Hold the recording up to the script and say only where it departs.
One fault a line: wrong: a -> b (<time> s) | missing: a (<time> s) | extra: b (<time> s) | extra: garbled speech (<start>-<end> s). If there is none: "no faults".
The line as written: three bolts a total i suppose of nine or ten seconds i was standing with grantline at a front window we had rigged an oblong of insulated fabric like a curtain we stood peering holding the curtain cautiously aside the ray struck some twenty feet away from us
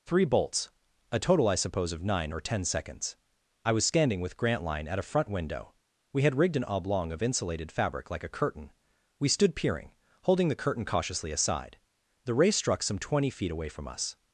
no faults